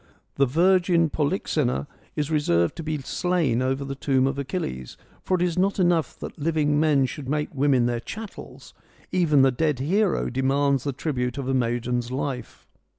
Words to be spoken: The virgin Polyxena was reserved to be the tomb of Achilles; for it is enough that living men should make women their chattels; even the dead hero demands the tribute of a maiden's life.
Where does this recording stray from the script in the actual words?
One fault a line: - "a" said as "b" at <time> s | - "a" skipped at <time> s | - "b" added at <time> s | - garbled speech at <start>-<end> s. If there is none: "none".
- "was" said as "is" at 2.1 s
- "slain over" added at 3.0 s
- "not" added at 5.6 s